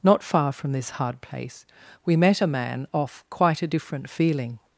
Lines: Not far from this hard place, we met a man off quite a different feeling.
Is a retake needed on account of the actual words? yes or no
no